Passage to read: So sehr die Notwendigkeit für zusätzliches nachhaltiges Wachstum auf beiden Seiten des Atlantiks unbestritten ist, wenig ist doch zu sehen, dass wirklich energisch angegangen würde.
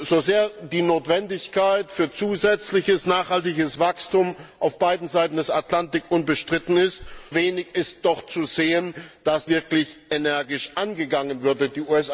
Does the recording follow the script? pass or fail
pass